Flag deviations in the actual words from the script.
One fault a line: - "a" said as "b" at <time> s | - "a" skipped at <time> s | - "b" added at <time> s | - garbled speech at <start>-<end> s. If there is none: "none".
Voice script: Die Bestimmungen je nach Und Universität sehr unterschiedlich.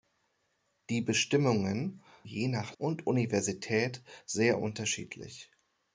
none